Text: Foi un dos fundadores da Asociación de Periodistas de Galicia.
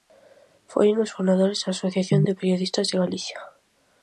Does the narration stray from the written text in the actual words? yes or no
no